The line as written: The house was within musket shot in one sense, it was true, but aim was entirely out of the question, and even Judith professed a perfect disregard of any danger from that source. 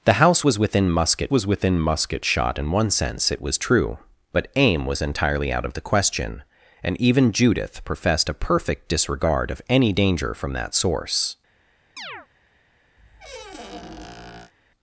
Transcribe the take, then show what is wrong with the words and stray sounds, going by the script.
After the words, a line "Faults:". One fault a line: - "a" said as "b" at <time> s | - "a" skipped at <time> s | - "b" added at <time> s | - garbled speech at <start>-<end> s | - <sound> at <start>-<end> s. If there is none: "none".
The house was within musket was within musket shot in one sense, it was true, but aim was entirely out of the question, and even Judith professed a perfect disregard of any danger from that source.
Faults:
- "was within musket" added at 1.3 s
- chirp at 12.0-12.3 s
- squeak at 13.0-14.5 s